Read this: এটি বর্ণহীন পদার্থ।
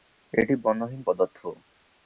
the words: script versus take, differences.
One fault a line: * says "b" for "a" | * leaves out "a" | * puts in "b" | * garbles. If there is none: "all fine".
all fine